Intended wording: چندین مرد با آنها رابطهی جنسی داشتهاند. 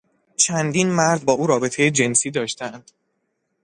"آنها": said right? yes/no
no